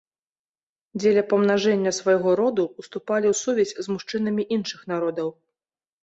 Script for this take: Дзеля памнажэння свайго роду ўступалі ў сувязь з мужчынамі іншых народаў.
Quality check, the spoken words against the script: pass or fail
pass